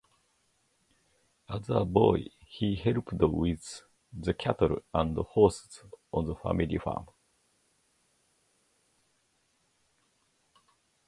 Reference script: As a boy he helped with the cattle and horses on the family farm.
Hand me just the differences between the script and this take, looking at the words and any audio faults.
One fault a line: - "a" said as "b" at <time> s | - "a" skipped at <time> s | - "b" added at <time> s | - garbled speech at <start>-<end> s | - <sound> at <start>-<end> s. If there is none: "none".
none